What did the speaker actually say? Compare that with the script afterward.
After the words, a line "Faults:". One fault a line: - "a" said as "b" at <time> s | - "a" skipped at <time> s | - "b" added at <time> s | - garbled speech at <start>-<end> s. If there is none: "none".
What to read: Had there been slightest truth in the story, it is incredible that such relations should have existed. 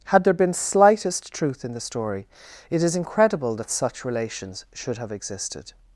Had there been slightest truth in the story, it is incredible that such relations should have existed.
Faults:
none